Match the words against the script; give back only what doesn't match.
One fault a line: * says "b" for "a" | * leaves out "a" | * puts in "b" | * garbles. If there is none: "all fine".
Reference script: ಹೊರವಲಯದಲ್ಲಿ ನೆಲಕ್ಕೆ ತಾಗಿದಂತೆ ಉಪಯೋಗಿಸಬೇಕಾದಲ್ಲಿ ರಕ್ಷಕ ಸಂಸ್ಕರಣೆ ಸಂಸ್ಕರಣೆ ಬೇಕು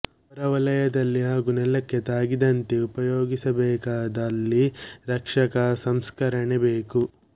* puts in "ಹಾಗೂ"
* leaves out "ಸಂಸ್ಕರಣೆ"